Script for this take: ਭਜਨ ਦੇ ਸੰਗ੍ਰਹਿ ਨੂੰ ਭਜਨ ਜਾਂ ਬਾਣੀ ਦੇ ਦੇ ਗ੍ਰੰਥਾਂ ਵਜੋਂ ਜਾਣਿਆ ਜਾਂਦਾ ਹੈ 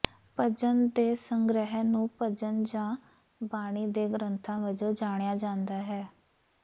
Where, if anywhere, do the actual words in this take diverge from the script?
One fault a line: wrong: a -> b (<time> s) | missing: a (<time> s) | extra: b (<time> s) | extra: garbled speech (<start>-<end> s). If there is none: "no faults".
missing: ਦੇ (4.1 s)